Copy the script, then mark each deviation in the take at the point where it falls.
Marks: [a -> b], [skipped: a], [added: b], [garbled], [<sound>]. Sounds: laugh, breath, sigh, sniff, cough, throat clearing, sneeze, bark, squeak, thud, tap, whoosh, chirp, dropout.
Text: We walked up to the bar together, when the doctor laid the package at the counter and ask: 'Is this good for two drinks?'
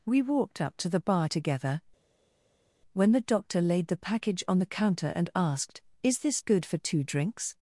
We walked up to the bar together, when the doctor laid the package [at -> on] the counter and [ask: -> asked] 'Is this good for two drinks?'